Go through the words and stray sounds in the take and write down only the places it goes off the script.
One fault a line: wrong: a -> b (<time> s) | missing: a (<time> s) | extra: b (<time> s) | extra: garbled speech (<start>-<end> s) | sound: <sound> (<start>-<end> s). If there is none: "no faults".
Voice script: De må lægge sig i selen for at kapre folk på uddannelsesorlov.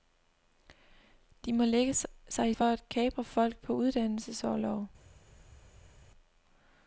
missing: selen (2.5 s)